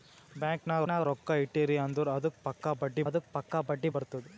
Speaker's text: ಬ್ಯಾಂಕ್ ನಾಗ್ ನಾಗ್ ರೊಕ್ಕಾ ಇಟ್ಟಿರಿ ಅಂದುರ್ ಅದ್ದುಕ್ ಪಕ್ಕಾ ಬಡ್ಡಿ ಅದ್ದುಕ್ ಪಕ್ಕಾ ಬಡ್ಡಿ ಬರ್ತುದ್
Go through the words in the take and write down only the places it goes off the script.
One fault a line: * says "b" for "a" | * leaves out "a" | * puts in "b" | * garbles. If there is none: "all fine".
all fine